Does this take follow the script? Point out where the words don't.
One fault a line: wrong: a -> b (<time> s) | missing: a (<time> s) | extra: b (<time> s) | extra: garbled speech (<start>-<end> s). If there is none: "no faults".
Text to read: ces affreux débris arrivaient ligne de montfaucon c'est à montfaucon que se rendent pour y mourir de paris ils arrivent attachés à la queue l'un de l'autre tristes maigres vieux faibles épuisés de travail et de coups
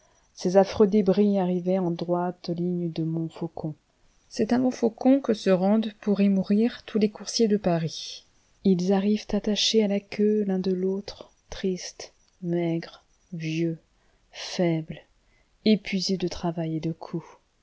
extra: en droite (1.8 s)
extra: tous les coursiers (6.8 s)